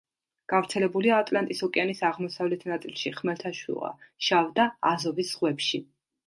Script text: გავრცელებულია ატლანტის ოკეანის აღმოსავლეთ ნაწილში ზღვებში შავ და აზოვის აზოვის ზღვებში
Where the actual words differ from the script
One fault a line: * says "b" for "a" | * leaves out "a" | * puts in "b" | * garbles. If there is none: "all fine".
* says "ხმელთაშუა" for "ზღვებში"
* leaves out "აზოვის"